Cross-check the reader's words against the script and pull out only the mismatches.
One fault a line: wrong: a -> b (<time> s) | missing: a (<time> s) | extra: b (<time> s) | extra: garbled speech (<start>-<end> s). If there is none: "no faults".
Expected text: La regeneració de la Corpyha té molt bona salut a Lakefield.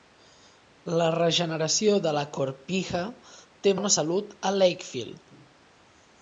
missing: molt (3.8 s)